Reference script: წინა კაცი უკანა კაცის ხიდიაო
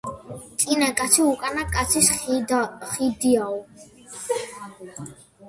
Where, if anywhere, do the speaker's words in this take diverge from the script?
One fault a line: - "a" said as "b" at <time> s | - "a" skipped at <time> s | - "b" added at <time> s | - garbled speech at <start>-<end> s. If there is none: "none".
none